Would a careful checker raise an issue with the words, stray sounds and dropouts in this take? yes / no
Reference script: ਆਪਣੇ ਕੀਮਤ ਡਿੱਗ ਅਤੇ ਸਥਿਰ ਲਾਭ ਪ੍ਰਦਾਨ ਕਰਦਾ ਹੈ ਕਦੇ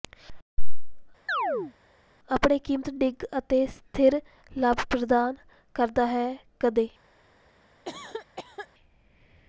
yes